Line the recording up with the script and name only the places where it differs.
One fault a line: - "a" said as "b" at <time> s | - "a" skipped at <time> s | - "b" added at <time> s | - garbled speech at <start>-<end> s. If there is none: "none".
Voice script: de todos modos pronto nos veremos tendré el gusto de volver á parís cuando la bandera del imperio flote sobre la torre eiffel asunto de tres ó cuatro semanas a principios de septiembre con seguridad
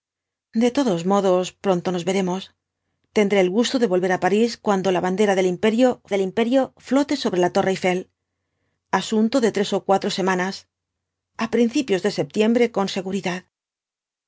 - "del imperio" added at 6.1 s